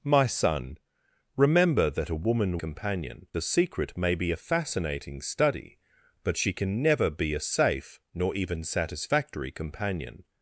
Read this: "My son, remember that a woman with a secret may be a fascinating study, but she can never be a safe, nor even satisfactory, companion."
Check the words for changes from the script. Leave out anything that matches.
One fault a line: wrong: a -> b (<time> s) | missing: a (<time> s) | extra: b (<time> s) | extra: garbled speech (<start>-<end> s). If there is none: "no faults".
wrong: with -> companion (2.5 s)